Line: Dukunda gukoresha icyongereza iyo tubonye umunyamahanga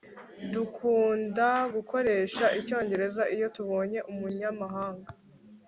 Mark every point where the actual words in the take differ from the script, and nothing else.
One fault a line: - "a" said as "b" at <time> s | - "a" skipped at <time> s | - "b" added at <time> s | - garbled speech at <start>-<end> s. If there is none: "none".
none